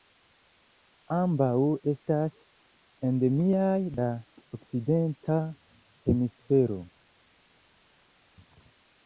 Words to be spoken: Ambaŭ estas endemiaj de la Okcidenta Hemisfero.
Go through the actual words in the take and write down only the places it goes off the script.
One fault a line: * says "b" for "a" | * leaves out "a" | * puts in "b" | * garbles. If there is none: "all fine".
* leaves out "de"